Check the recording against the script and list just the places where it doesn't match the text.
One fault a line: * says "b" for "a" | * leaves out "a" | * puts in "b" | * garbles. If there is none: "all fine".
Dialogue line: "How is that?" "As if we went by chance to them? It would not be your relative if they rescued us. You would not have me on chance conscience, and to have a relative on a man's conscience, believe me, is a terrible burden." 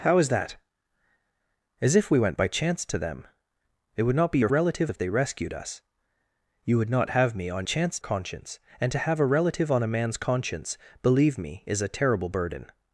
all fine